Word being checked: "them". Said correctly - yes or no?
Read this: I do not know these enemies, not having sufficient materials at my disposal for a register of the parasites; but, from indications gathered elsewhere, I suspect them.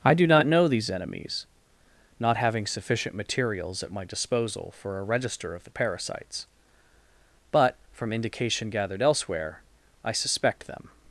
yes